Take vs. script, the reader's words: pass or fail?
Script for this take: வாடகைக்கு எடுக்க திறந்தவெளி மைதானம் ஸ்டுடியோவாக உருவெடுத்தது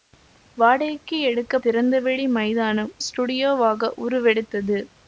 pass